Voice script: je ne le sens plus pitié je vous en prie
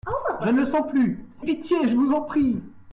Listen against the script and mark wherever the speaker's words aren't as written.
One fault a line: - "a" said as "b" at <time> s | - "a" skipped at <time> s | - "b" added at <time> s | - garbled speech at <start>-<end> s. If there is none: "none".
none